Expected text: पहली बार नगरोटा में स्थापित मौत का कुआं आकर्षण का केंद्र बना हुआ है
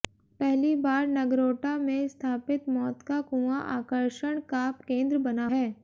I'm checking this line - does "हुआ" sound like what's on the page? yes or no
no